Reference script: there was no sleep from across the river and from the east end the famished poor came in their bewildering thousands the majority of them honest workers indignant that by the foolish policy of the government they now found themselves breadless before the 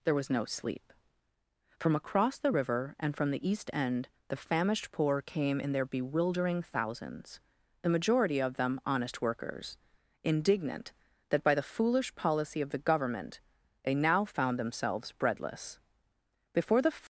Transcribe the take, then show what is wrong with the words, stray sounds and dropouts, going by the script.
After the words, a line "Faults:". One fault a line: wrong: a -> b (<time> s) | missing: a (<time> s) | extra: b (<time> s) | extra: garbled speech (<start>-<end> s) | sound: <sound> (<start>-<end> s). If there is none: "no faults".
there was no sleep from across the river and from the east end the famished poor came in their bewildering thousands the majority of them honest workers indignant that by the foolish policy of the government they now found themselves breadless before the
Faults:
no faults